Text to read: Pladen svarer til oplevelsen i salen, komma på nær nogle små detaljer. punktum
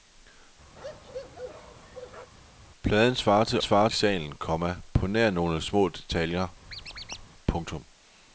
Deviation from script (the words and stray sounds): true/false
true